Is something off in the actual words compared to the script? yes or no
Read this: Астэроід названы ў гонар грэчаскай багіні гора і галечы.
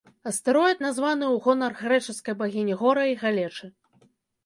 no